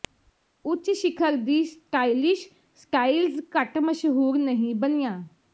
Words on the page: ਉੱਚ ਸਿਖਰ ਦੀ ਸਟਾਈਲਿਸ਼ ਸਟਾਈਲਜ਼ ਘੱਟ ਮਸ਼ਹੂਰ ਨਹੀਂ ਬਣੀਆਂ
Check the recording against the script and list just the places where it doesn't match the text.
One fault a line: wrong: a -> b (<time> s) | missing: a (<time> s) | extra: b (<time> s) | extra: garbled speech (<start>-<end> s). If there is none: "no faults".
no faults